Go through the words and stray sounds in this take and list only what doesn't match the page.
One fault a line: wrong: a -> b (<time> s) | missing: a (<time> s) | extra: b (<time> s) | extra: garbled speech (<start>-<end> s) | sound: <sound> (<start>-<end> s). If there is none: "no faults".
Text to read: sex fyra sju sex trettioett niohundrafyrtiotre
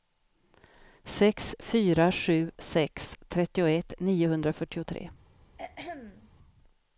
sound: throat clearing (5.6-6.3 s)